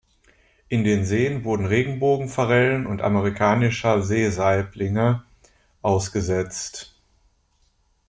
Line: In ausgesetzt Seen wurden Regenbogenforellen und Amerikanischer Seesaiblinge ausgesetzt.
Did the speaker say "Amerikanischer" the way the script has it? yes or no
yes